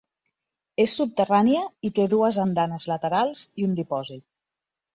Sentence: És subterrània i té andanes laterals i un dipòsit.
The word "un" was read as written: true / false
true